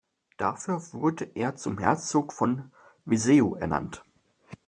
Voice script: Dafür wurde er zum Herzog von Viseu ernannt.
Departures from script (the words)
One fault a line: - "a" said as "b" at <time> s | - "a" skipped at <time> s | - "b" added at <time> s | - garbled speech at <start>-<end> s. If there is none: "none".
none